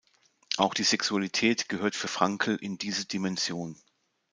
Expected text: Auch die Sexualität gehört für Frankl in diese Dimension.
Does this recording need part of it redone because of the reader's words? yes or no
no